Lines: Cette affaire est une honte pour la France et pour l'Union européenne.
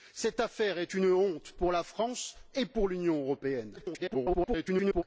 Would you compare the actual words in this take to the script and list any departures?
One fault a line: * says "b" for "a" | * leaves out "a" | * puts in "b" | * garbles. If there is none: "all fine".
* garbles